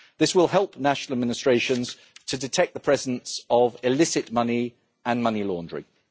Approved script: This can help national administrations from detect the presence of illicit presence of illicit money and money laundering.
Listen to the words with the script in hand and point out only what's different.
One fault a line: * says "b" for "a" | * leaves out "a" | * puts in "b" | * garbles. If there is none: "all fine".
* says "will" for "can"
* says "to" for "from"
* leaves out "presence of illicit"